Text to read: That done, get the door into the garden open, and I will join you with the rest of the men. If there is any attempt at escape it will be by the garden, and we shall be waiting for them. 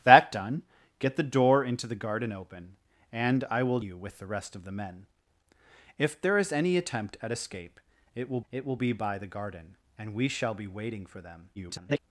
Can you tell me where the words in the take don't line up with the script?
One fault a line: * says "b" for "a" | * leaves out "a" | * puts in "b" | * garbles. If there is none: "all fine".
* leaves out "join"
* puts in "it will"
* garbles